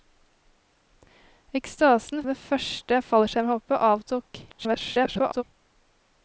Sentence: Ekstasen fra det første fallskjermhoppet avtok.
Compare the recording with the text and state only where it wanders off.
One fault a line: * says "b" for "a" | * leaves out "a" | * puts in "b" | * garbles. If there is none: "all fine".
* leaves out "fra"
* garbles